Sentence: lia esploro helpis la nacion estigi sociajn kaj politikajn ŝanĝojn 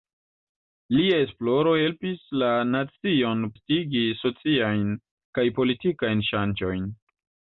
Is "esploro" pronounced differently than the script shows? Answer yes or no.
no